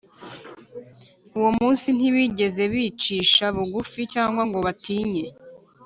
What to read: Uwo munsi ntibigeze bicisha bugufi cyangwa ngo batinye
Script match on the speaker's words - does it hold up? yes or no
yes